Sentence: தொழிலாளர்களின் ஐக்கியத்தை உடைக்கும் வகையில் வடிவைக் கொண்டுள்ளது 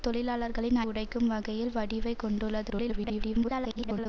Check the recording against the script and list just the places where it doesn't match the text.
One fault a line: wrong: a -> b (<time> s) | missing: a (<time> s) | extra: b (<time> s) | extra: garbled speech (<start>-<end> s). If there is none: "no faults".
missing: ஐக்கியத்தை (0.8 s)
extra: garbled speech (2.7-4.1 s)